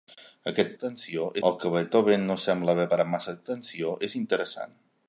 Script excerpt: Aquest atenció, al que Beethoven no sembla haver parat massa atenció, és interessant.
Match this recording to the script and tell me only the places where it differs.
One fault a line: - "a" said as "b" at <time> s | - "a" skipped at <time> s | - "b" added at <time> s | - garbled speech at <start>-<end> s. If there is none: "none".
none